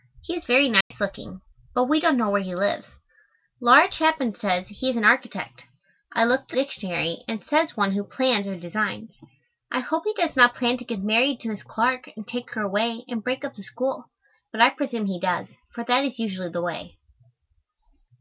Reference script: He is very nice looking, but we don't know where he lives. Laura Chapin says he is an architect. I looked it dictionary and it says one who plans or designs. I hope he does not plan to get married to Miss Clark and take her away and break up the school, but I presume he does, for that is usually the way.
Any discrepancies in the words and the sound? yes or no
yes